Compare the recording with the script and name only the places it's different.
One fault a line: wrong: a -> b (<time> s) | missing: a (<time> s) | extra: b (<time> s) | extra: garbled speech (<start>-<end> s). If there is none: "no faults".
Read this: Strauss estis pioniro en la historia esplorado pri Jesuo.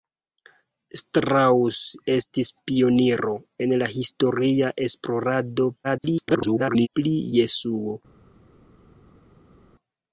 extra: garbled speech (5.8-6.9 s)